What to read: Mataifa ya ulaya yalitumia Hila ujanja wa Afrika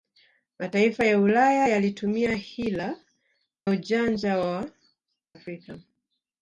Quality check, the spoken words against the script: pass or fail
pass